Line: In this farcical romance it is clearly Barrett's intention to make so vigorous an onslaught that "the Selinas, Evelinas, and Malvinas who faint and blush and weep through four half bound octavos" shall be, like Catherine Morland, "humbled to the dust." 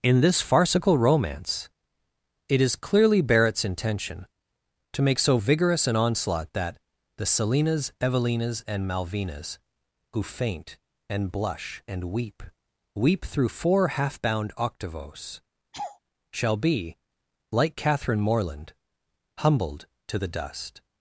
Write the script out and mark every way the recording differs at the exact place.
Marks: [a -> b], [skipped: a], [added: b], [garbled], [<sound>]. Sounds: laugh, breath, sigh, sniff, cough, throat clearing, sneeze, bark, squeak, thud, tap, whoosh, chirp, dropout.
In this farcical romance it is clearly Barrett's intention to make so vigorous an onslaught that "the Selinas, Evelinas, and Malvinas who faint and blush and weep [added: weep] through four half bound octavos" [laugh] shall be, like Catherine Morland, "humbled to the dust."